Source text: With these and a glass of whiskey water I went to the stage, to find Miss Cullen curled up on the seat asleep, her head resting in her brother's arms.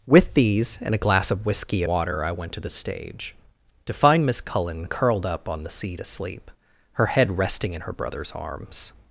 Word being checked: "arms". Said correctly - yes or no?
yes